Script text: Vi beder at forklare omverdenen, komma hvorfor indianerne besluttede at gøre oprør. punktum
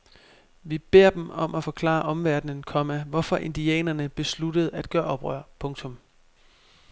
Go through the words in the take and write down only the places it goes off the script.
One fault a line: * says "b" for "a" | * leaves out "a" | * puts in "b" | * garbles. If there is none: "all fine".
* puts in "dem om"